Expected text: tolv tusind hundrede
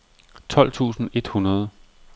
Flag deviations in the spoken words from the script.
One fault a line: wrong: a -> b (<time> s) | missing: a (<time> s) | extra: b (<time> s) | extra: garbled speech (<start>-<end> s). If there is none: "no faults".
extra: et (1.1 s)